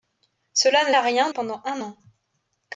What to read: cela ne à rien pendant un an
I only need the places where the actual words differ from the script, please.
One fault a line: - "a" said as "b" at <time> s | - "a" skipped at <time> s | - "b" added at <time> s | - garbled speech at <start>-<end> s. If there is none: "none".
none